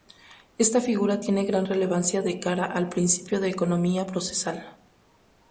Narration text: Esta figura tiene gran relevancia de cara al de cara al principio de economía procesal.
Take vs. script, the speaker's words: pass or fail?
fail